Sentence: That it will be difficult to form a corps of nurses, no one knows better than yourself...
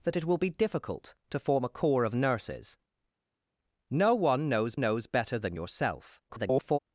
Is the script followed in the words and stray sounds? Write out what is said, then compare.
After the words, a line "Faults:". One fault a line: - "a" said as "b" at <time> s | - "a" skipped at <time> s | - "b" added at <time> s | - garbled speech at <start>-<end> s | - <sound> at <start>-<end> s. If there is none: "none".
That it will be difficult to form a corps of nurses, no one knows knows better than yourself... [garbled]
Faults:
- "knows" added at 4.8 s
- garbled speech at 6.3-6.8 s